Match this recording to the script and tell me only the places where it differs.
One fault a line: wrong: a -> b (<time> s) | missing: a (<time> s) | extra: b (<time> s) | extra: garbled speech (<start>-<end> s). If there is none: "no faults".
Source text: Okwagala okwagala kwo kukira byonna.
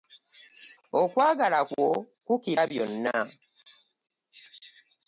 missing: okwagala (1.6 s)